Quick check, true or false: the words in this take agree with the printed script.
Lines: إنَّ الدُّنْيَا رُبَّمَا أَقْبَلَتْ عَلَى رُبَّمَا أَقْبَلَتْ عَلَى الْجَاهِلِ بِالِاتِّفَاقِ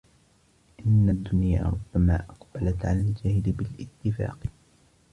false